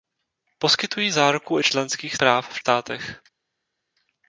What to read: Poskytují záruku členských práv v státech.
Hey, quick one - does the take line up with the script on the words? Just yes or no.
yes